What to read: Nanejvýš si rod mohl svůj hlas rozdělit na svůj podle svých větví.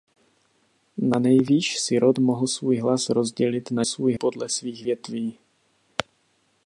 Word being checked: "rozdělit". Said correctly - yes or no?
yes